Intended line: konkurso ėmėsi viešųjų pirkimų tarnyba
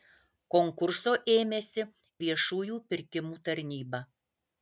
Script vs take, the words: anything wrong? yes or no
no